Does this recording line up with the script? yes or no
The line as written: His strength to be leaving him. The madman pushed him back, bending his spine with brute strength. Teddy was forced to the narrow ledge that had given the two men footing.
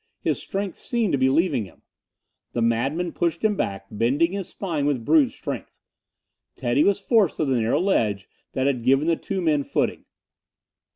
no